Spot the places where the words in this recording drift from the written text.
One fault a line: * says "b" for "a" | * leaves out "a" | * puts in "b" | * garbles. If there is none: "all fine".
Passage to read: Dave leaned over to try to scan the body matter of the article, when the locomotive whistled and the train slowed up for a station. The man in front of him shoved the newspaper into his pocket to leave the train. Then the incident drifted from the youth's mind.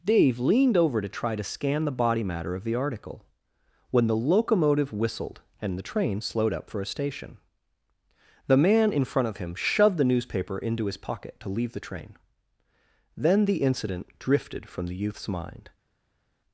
all fine